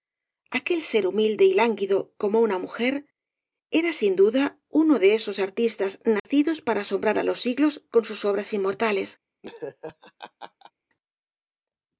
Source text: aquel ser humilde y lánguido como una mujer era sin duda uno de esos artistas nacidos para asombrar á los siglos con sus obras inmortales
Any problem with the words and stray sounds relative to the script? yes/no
yes